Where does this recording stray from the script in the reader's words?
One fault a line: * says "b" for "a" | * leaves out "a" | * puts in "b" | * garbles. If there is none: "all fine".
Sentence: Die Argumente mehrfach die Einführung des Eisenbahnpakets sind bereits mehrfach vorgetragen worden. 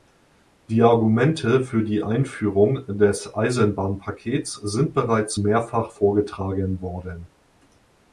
* says "für" for "mehrfach"